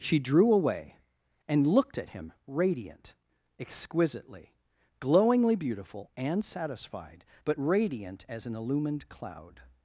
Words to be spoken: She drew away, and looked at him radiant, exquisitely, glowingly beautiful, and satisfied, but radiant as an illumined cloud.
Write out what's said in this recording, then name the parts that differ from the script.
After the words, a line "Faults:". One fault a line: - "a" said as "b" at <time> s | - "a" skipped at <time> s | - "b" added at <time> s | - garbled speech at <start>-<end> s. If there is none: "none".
She drew away, and looked at him radiant, exquisitely, glowingly beautiful, and satisfied, but radiant as an illumined cloud.
Faults:
none